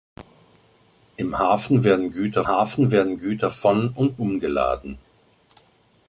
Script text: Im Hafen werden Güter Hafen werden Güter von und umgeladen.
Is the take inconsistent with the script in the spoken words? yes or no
no